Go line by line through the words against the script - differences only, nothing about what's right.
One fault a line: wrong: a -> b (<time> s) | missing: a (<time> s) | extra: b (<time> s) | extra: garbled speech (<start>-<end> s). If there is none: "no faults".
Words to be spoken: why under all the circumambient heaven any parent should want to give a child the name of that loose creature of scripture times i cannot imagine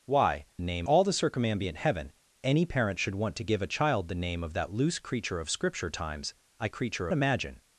wrong: under -> name (0.6 s)
wrong: cannot -> creature (6.7 s)